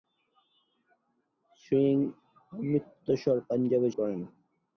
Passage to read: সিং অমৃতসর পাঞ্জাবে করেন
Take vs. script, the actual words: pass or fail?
pass